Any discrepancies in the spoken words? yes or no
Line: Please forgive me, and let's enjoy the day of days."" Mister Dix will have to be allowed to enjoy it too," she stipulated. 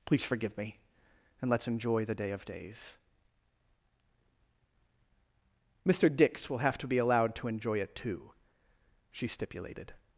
no